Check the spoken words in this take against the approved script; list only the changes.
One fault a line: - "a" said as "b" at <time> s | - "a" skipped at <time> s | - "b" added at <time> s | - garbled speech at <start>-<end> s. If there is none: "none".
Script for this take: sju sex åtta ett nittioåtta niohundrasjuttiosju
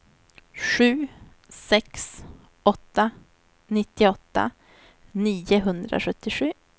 - "ett" skipped at 3.1 s